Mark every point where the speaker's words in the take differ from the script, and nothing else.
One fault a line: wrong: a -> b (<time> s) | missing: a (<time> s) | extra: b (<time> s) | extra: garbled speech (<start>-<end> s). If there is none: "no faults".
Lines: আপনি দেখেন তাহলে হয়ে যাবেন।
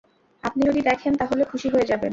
extra: যদি (0.6 s)
extra: খুশি (1.4 s)